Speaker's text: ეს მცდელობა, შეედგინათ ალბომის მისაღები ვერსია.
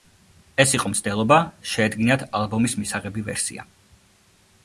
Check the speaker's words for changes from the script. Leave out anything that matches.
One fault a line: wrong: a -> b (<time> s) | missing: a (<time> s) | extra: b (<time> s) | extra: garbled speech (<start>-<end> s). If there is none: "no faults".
extra: იყო (0.8 s)